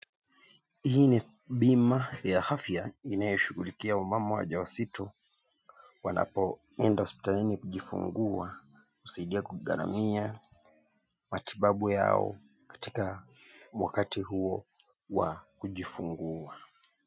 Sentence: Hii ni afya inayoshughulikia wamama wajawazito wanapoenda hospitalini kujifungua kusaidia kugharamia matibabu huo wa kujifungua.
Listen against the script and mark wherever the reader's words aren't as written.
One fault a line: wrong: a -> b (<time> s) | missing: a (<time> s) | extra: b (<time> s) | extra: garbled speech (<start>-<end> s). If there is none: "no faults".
extra: bima ya (1.5 s)
extra: yao katika wakati (11.9 s)